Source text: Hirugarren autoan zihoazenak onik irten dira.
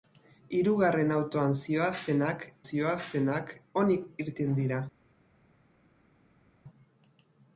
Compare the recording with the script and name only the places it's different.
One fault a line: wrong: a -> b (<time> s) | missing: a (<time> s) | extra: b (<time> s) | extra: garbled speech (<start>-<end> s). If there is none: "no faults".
extra: zihoazenak (2.7 s)